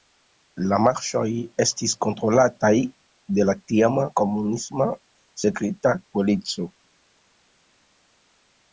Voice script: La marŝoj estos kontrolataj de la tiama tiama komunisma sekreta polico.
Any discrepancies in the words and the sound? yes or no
yes